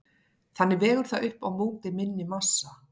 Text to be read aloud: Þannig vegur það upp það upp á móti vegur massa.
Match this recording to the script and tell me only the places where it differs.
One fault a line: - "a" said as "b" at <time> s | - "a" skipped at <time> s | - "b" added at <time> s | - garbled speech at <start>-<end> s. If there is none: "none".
- "það upp" skipped at 1.4 s
- "vegur" said as "minni" at 2.0 s